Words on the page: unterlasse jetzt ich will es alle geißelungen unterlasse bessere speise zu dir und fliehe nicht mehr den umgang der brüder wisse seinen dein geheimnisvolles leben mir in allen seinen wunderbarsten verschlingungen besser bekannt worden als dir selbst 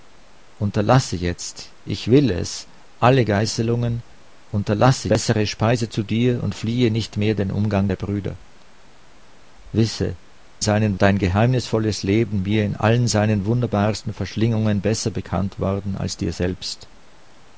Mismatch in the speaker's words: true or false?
false